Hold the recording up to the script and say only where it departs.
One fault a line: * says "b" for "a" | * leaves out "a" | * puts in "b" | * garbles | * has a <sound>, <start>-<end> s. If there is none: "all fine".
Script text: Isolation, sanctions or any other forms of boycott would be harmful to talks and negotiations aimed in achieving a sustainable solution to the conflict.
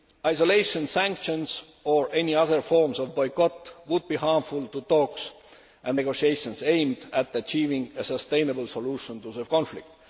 * says "at" for "in"